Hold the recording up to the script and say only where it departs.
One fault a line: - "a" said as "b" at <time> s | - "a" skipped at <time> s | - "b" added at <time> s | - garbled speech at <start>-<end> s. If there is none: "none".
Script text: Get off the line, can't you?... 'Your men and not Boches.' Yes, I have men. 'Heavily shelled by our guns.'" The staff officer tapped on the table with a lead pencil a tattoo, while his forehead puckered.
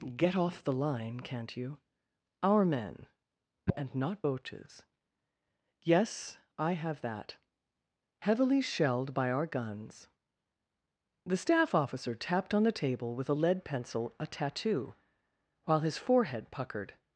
- "Your" said as "Our" at 2.4 s
- "men" said as "that" at 7.0 s